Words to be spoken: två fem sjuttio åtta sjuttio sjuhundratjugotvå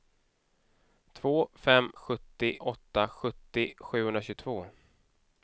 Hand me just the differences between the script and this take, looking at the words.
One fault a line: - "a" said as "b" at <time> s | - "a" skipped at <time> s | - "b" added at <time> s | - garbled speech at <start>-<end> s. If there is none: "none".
none